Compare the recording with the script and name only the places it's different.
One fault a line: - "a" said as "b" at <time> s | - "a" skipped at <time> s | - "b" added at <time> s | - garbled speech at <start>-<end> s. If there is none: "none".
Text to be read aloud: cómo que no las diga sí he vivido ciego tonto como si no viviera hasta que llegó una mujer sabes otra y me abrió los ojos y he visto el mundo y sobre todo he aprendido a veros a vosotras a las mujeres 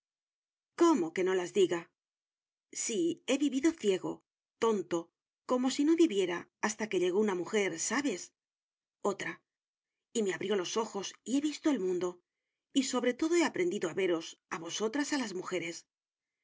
none